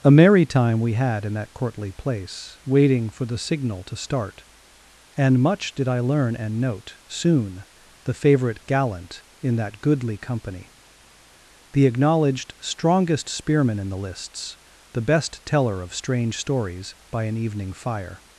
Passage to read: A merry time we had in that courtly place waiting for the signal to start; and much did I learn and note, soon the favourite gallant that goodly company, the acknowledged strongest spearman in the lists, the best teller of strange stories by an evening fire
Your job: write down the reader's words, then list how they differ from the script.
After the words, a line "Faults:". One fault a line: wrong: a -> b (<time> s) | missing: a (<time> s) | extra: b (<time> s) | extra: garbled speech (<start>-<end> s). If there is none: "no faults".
A merry time we had in that courtly place waiting for the signal to start; and much did I learn and note, soon the favourite gallant in that goodly company, the acknowledged strongest spearman in the lists, the best teller of strange stories by an evening fire
Faults:
extra: in (9.4 s)